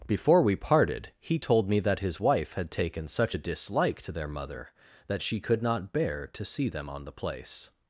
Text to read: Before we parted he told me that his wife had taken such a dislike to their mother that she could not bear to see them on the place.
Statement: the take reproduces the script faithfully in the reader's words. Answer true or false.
true